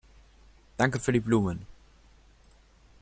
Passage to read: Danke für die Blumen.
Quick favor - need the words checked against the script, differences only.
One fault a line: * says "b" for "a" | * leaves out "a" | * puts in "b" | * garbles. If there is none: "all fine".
all fine